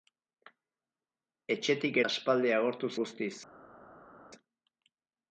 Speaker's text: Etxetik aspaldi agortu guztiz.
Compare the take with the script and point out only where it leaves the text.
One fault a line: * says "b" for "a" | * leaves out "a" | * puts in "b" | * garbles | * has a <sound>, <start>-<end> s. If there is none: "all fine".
all fine